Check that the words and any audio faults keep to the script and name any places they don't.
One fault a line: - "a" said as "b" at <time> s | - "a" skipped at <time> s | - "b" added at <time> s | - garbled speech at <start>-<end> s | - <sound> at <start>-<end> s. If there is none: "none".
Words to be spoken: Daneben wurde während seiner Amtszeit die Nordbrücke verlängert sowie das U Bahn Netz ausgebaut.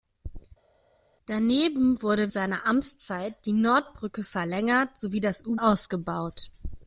- "während" skipped at 2.3 s
- "Bahn Netz" skipped at 5.6 s